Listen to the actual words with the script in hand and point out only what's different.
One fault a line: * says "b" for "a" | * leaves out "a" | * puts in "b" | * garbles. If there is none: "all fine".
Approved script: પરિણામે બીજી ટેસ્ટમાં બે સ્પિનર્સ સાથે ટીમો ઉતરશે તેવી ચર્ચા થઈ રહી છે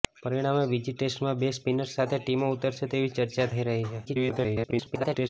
* garbles